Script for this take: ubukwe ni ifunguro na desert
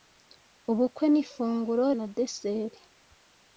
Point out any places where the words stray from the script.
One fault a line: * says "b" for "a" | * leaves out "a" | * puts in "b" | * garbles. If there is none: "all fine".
all fine